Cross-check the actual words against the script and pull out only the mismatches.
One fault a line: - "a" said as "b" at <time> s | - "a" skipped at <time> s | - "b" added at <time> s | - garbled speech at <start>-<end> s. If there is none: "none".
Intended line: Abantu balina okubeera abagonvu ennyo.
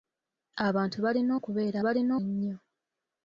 - "abagonvu" said as "balina" at 1.9 s